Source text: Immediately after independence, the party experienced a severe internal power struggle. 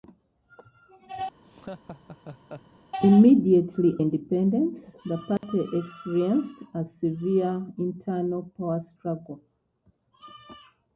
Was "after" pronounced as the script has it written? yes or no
no